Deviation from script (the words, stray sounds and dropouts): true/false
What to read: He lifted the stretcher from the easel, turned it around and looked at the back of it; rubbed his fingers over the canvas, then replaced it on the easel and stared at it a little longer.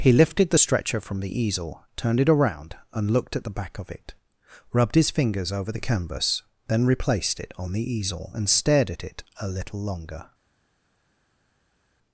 false